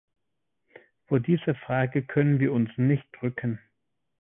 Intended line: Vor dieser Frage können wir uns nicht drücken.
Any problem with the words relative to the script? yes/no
no